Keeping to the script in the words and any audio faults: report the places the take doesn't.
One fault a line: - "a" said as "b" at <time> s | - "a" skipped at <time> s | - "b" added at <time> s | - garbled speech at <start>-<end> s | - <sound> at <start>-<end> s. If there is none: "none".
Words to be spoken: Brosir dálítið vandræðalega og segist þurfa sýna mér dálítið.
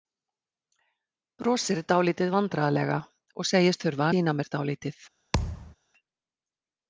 - thud at 5.3-5.8 s